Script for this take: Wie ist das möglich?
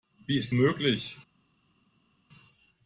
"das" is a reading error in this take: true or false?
true